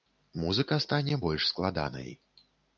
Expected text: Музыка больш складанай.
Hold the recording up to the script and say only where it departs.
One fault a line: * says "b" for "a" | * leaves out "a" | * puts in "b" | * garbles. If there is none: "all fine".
* puts in "стане"